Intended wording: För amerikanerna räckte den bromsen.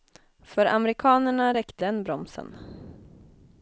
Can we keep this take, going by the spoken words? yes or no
yes